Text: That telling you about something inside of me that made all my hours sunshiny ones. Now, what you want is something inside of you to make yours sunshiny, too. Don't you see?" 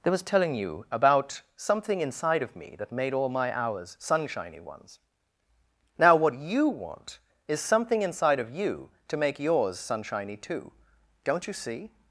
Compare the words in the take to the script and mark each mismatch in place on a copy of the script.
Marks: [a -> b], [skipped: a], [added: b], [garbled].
That [added: was] telling you about something inside of me that made all my hours sunshiny ones. Now, what you want is something inside of you to make yours sunshiny, too. Don't you see?"